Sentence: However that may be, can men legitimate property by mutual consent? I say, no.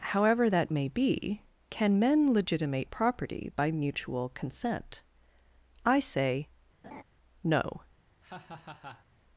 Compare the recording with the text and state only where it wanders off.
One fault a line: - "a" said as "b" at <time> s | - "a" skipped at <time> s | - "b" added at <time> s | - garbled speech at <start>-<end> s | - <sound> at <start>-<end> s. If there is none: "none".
- laugh at 6.8-7.0 s
- laugh at 8.2-9.1 s